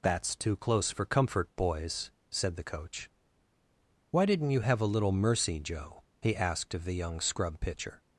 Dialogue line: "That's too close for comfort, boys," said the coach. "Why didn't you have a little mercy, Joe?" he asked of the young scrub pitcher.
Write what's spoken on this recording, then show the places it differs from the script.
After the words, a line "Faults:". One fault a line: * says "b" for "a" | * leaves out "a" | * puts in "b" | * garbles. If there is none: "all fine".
"That's too close for comfort, boys," said the coach. "Why didn't you have a little mercy, Joe?" he asked of the young scrub pitcher.
Faults:
all fine